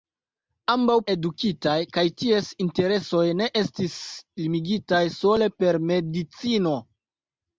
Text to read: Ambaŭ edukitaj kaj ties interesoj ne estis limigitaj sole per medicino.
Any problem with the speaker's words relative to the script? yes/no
no